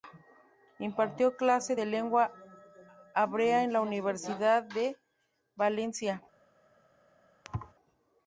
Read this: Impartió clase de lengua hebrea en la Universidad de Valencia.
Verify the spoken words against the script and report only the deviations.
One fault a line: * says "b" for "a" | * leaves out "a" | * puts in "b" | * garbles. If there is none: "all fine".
all fine